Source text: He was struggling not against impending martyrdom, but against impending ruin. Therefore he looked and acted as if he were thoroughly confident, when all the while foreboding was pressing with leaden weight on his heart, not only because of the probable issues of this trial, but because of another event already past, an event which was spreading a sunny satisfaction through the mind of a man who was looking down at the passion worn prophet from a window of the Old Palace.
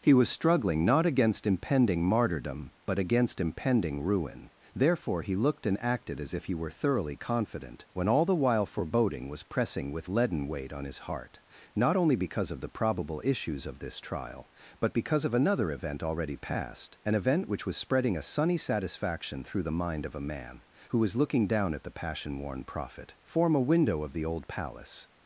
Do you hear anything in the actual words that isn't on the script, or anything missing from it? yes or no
yes